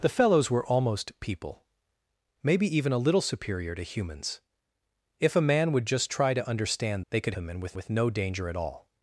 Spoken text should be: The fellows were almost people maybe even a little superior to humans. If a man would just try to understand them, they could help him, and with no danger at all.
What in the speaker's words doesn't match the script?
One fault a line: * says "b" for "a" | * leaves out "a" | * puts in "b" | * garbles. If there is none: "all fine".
* leaves out "them"
* leaves out "help"
* puts in "with"